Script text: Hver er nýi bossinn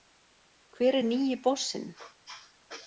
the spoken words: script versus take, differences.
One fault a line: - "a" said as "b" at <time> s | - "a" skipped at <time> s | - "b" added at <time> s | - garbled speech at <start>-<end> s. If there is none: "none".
none